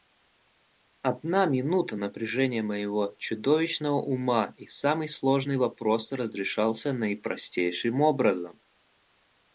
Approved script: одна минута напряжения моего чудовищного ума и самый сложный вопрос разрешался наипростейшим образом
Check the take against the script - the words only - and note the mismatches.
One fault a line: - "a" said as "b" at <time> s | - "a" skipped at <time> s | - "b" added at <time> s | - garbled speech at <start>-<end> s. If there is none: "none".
none